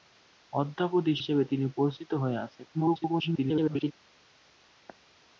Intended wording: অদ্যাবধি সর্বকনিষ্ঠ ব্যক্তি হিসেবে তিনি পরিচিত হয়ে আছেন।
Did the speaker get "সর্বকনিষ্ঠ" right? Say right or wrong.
wrong